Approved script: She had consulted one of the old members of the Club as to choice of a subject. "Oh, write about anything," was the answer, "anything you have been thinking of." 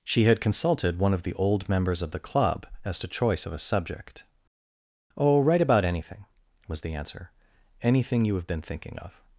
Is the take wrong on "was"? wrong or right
right